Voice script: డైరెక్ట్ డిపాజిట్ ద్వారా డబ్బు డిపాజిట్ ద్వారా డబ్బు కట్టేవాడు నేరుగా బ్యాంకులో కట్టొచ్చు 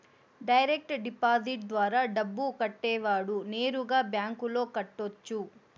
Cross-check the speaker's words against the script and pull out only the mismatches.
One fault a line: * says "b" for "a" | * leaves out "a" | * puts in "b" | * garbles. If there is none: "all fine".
* leaves out "డిపాజిట్ ద్వారా డబ్బు"